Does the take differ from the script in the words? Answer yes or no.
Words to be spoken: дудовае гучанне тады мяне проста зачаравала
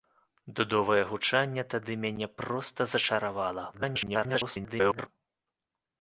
yes